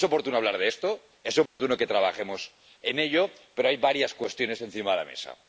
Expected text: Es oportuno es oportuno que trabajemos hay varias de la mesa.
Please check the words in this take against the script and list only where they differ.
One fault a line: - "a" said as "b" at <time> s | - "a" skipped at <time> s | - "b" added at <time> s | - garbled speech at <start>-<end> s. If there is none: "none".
- "hablar de esto" added at 0.4 s
- "en ello pero" added at 2.8 s
- "cuestiones encima" added at 4.1 s